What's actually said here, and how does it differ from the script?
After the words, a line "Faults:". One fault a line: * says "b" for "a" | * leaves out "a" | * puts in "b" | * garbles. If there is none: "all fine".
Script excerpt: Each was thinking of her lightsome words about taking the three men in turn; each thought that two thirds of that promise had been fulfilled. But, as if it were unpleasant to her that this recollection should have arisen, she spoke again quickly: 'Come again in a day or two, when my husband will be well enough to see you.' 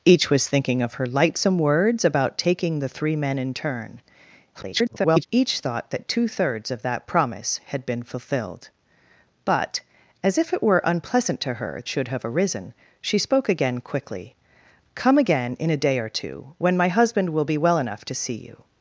Each was thinking of her lightsome words about taking the three men in turn; [garbled] each thought that two thirds of that promise had been fulfilled. But, as if it were unpleasant to her should have arisen, she spoke again quickly: 'Come again in a day or two, when my husband will be well enough to see you.'
Faults:
* garbles
* leaves out "that this recollection"